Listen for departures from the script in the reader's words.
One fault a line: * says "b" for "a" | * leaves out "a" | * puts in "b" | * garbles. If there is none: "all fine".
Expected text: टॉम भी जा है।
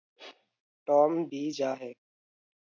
all fine